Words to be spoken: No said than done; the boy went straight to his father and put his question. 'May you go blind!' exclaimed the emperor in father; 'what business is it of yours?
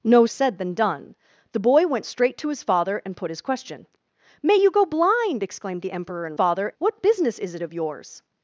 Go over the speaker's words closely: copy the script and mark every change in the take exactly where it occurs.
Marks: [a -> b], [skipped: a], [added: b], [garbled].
No said than done; the boy went straight to his father and put his question. 'May you go blind!' exclaimed the emperor in father; 'what business is it of yours?